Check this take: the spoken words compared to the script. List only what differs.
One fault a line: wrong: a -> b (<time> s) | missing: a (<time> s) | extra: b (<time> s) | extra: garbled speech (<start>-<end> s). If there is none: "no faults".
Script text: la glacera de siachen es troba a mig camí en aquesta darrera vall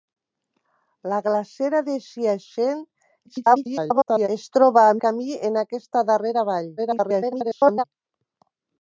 extra: garbled speech (3.3-4.3 s)
missing: mig (4.9 s)
extra: garbled speech (6.8-7.8 s)